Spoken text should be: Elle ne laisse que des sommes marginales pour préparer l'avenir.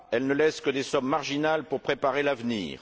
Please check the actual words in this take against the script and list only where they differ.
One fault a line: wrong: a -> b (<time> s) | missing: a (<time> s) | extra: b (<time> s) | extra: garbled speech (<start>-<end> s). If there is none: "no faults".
no faults